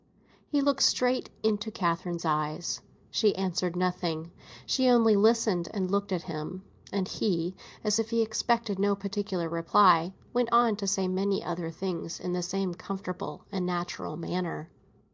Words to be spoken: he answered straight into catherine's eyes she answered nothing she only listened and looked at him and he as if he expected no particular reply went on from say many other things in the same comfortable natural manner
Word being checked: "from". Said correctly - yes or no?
no